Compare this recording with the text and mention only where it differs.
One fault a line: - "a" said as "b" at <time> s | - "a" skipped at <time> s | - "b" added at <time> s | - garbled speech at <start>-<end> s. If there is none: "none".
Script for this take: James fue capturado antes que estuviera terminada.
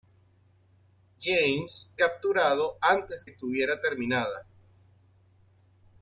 - "fue" skipped at 1.9 s
- "que" skipped at 3.3 s